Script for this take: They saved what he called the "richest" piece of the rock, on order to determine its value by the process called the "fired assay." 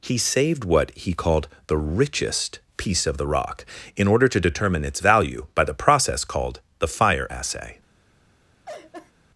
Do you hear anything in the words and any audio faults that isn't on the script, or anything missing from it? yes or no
yes